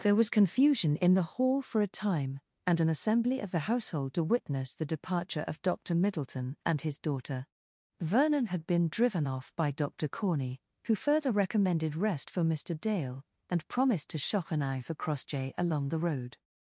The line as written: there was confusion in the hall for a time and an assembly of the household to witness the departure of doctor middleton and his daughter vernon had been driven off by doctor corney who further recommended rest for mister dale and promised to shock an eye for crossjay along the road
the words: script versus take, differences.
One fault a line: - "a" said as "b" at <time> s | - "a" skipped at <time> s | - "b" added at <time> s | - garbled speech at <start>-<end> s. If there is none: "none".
none